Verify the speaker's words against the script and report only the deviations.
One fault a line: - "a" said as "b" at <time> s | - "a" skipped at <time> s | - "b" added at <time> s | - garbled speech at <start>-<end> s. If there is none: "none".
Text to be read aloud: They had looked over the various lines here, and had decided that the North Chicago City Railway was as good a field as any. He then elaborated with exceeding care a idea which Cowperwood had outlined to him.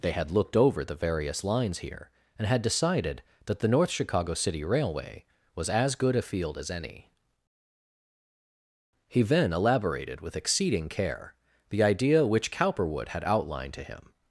- "a" said as "the" at 11.7 s